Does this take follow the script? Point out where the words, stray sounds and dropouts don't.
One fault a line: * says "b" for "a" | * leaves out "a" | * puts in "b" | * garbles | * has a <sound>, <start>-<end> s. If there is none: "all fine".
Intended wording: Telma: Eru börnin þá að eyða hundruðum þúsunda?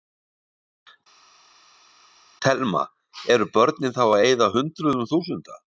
all fine